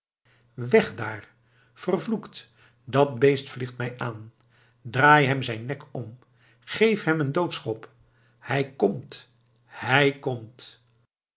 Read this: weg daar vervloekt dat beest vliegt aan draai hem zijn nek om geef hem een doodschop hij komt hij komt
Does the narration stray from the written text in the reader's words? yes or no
yes